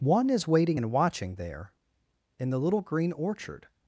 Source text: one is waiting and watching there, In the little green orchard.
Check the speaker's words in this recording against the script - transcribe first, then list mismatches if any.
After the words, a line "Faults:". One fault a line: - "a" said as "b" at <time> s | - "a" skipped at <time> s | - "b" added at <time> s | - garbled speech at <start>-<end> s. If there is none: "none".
one is waiting and watching there, In the little green orchard.
Faults:
none